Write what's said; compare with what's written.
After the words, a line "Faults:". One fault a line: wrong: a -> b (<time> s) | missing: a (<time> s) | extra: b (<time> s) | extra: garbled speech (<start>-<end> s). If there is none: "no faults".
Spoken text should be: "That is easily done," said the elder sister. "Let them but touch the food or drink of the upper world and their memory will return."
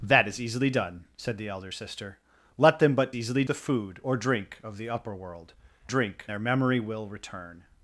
"That is easily done," said the elder sister. "Let them but easily the food or drink of the upper world drink their memory will return."
Faults:
wrong: touch -> easily (3.2 s)
wrong: and -> drink (5.9 s)